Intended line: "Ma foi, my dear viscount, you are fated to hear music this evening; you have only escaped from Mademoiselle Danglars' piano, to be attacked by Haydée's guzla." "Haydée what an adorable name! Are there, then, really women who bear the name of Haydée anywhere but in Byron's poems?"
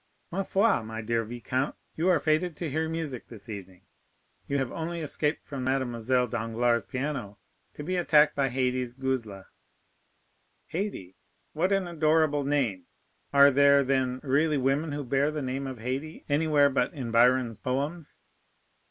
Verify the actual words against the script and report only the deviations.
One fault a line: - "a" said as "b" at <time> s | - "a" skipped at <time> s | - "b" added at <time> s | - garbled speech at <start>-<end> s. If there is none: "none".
none